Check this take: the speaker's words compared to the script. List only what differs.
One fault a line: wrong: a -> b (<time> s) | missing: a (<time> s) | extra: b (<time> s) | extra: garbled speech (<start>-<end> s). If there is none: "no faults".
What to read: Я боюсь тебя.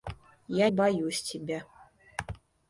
no faults